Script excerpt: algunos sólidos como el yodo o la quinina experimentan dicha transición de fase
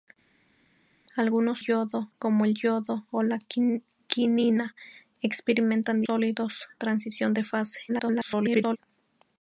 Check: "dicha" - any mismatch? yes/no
yes